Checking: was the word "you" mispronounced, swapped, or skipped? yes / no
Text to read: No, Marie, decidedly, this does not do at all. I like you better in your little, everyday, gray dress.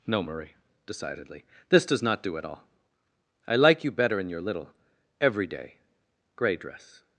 no